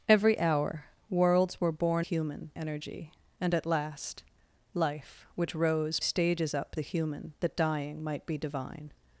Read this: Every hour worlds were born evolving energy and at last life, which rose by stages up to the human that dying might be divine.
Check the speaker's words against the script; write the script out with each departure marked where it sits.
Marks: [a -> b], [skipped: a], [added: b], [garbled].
Every hour worlds were born [evolving -> human] energy and at last life, which rose [skipped: by] stages up [skipped: to] the human that dying might be divine.